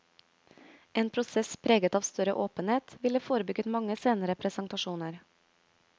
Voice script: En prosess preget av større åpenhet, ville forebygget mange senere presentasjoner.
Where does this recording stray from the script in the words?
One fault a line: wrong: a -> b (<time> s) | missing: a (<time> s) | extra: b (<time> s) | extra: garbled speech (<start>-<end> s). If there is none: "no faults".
no faults